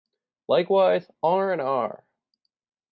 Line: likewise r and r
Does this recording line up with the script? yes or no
yes